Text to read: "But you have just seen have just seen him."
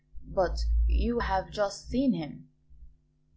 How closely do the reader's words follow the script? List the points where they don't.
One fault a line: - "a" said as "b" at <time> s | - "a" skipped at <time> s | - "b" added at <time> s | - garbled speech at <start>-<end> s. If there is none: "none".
- "have just seen" skipped at 2.1 s